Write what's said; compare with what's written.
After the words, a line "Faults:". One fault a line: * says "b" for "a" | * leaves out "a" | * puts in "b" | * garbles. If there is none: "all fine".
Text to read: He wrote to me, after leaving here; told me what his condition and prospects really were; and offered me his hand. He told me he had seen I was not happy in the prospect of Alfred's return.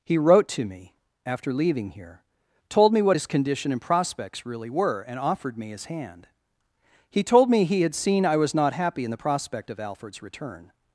He wrote to me, after leaving here; told me what his condition and prospects really were; and offered me his hand. He told me he had seen I was not happy in the prospect of Alfred's return.
Faults:
all fine